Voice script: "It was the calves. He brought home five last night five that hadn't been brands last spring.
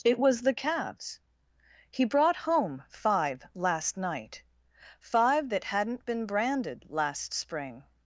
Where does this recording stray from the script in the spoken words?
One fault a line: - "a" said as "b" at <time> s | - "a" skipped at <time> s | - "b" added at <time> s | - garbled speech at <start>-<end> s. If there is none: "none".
- "brands" said as "branded" at 6.2 s